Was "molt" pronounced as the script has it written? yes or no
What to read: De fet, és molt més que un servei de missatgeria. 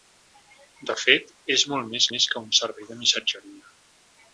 yes